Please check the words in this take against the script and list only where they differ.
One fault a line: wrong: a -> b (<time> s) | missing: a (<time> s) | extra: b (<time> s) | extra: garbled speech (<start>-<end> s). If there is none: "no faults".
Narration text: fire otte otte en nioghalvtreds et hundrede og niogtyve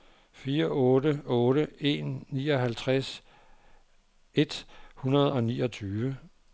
no faults